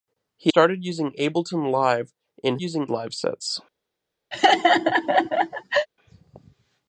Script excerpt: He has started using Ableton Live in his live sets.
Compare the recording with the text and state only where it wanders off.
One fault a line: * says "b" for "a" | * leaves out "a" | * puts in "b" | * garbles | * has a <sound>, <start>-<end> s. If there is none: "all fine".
* leaves out "has"
* says "using" for "his"
* has a laugh, 4.3-5.9 s